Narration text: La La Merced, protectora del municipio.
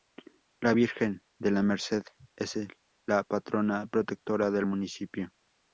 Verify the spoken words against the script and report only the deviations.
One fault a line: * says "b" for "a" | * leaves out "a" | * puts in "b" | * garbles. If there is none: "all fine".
* puts in "Virgen de"
* puts in "es la patrona"